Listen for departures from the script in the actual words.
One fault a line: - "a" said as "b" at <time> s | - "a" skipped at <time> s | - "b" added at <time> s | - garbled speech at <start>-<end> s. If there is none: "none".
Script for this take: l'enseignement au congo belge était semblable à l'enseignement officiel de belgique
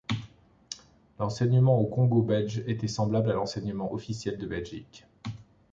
none